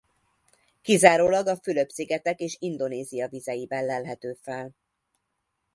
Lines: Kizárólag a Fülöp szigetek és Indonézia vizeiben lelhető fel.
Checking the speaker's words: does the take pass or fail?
pass